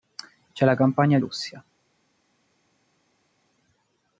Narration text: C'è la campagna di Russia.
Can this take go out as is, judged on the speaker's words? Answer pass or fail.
fail